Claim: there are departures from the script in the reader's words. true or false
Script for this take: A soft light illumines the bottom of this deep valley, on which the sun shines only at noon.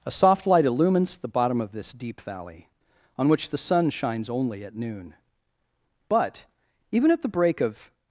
true